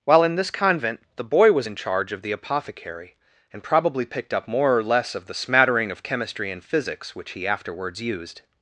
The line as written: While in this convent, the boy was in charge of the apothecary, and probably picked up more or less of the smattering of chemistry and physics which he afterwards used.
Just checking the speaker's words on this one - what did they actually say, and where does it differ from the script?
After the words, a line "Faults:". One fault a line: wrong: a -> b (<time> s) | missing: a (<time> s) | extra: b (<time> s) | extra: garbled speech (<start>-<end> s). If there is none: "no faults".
While in this convent, the boy was in charge of the apothecary, and probably picked up more or less of the smattering of chemistry and physics which he afterwards used.
Faults:
no faults